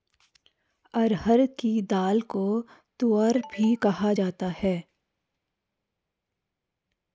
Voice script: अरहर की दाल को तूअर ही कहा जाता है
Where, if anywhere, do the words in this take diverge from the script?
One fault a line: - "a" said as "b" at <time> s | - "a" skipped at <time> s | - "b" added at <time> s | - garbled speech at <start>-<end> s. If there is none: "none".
- "ही" said as "भी" at 3.4 s